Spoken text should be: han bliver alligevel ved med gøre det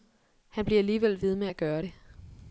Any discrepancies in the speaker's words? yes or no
yes